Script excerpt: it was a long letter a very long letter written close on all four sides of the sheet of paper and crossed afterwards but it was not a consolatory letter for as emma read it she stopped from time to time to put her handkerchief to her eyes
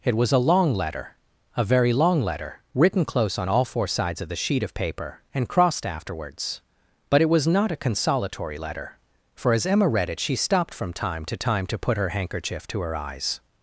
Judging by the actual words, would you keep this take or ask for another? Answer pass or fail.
pass